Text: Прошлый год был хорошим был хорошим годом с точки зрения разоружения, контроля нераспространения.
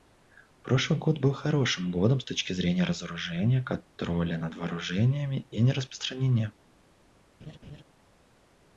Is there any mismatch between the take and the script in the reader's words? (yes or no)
yes